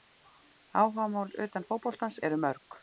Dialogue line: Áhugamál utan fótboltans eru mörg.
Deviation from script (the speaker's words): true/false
false